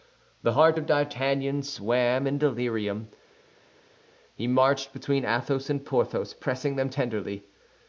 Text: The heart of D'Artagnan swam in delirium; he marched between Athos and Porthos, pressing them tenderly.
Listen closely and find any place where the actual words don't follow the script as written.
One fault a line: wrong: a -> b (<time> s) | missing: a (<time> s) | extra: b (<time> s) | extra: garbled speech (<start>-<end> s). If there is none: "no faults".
no faults